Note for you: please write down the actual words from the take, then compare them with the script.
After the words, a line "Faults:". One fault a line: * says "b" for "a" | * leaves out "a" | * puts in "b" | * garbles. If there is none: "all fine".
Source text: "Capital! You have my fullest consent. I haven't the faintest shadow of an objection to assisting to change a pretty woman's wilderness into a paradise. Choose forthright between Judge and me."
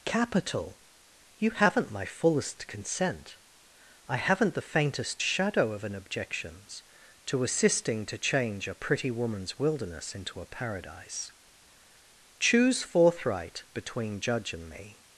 "Capital! You haven't my fullest consent. I haven't the faintest shadow of an objections to assisting to change a pretty woman's wilderness into a paradise. Choose forthright between Judge and me."
Faults:
* says "haven't" for "have"
* says "objections" for "objection"